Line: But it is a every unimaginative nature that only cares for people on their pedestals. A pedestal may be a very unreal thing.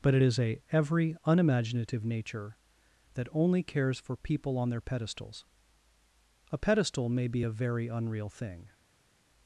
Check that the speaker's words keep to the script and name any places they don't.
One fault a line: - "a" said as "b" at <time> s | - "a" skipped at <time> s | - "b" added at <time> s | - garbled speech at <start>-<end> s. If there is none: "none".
none